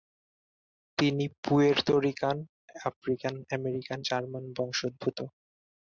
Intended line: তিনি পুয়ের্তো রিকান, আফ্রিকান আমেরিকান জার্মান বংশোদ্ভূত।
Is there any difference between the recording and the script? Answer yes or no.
no